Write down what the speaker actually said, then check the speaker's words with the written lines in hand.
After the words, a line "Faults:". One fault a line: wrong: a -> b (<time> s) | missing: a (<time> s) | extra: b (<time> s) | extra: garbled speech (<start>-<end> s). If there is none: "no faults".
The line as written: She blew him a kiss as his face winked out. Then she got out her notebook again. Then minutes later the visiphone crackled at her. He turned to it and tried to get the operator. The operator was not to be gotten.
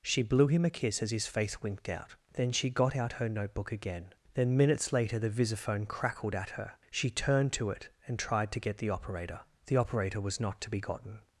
She blew him a kiss as his face winked out. Then she got out her notebook again. Then minutes later the visiphone crackled at her. She turned to it and tried to get the operator. The operator was not to be gotten.
Faults:
wrong: He -> She (6.9 s)